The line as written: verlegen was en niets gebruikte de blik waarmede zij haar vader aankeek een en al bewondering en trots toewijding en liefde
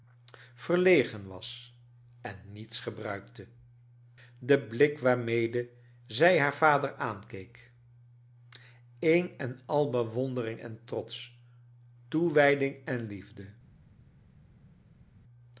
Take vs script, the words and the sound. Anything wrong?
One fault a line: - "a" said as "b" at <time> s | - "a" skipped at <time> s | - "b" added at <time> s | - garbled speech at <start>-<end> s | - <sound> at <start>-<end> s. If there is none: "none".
none